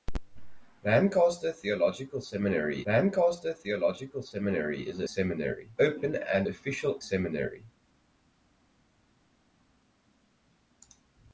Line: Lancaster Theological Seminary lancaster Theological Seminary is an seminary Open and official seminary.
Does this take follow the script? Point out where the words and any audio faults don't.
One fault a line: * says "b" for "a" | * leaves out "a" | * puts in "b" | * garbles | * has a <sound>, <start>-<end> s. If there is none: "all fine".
all fine